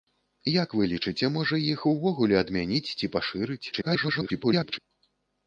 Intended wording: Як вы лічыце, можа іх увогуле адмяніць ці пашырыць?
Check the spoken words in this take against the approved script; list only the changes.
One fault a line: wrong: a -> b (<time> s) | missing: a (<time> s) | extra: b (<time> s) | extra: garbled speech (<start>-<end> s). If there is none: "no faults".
extra: garbled speech (3.7-4.8 s)